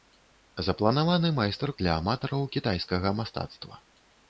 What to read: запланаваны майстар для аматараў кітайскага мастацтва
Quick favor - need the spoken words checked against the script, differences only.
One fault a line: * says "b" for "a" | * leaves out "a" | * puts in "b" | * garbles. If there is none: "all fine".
all fine